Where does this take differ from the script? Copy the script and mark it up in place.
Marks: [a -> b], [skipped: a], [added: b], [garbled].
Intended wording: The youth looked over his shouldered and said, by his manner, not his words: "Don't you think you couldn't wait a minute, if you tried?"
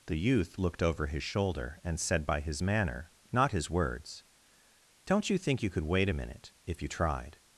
The youth looked over his [shouldered -> shoulder] and said, by his manner, not his words: "Don't you think you [couldn't -> could] wait a minute, if you tried?"